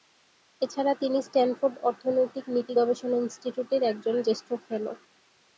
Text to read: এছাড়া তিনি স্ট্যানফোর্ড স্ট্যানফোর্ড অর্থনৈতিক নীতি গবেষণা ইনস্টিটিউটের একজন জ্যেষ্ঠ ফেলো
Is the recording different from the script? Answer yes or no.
yes